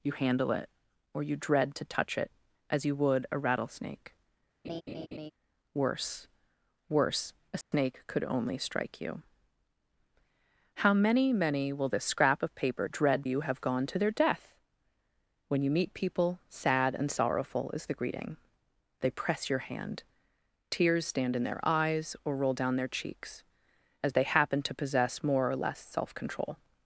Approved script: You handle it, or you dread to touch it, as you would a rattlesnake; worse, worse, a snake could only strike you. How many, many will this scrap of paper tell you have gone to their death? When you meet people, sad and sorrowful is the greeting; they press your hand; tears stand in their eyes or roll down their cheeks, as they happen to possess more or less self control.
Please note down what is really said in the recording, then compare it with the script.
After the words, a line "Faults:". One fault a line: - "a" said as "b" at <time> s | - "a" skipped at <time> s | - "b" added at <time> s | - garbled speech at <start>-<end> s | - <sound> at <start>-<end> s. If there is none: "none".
You handle it, or you dread to touch it, as you would a rattlesnake; worse, worse, a snake could only strike you. How many, many will this scrap of paper dread you have gone to their death? When you meet people, sad and sorrowful is the greeting; they press your hand; tears stand in their eyes or roll down their cheeks, as they happen to possess more or less self control.
Faults:
- laugh at 4.6-5.3 s
- dropout at 7.6-7.7 s
- "tell" said as "dread" at 12.9 s